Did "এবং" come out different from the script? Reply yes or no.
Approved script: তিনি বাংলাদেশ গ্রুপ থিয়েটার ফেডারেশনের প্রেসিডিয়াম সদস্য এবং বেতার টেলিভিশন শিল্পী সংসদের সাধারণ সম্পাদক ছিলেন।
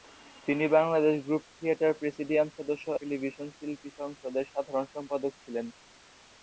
yes